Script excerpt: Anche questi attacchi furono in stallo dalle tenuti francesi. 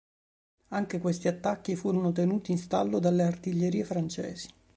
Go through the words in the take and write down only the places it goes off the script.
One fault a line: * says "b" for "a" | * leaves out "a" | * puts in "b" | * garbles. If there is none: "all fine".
* puts in "tenuti"
* says "artiglierie" for "tenuti"